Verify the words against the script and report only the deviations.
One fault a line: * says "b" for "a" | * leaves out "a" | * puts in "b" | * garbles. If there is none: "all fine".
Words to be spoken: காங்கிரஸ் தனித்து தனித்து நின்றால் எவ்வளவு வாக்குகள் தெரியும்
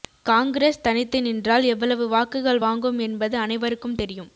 * leaves out "தனித்து"
* puts in "வாங்கும் என்பது அனைவருக்கும்"